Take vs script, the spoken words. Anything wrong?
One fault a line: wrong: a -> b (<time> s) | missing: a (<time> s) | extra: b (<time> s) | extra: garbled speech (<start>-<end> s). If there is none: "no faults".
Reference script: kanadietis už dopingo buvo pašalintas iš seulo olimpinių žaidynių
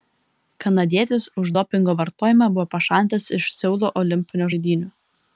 extra: vartojimą (2.0 s)